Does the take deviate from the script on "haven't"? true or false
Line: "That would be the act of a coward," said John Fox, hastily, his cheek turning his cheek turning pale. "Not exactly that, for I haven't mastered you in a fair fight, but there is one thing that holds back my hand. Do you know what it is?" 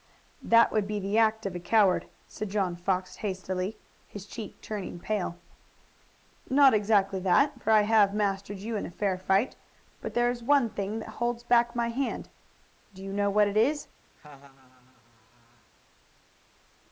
true